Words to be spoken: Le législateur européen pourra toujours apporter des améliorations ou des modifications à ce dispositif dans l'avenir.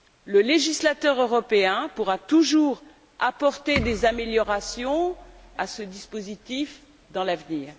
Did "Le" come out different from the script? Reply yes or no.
no